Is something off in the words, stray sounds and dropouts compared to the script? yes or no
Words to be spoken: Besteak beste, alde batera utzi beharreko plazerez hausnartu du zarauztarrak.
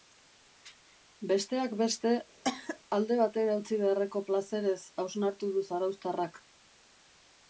yes